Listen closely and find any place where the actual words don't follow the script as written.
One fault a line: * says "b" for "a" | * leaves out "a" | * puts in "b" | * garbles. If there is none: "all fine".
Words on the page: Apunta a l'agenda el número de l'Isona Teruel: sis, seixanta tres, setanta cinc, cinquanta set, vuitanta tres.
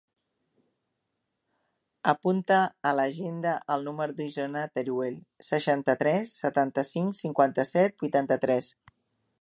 * leaves out "sis"